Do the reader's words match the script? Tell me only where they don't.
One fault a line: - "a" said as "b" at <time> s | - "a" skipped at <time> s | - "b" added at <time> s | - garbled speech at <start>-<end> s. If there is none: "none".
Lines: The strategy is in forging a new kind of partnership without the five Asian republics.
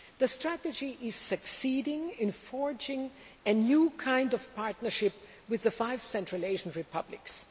- "succeeding" added at 1.1 s
- "without" said as "with" at 5.5 s
- "Central" added at 6.0 s